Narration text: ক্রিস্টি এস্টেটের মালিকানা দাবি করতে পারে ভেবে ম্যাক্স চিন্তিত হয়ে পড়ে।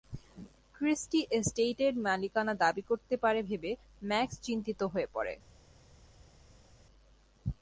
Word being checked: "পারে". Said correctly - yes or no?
yes